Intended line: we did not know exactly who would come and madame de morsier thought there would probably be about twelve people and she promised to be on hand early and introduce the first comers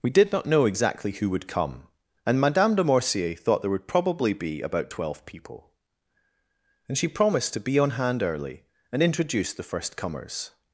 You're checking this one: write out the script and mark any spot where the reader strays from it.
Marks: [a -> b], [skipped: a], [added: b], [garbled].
we did not know exactly who would come and madame de morsier thought there would probably be about twelve people and she promised to be on hand early and introduce the first comers